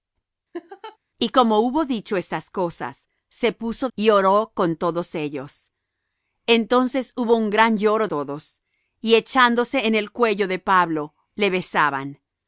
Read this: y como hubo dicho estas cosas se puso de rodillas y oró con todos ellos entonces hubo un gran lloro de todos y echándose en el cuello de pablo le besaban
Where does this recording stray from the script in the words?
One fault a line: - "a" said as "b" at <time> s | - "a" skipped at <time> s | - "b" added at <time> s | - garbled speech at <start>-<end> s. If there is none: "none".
- "de rodillas" skipped at 3.9 s
- "de" skipped at 8.1 s